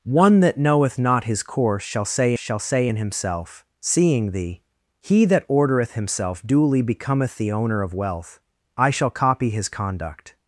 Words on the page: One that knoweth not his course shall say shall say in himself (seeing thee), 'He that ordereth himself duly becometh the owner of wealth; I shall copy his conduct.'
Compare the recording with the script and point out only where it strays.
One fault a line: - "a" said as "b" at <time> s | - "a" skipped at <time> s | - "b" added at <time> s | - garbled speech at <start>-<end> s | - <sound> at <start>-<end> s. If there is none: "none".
none